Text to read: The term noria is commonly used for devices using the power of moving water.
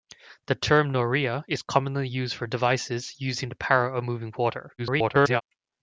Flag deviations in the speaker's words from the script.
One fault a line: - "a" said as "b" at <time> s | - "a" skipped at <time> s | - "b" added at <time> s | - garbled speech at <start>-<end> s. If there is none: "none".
- garbled speech at 4.8-5.4 s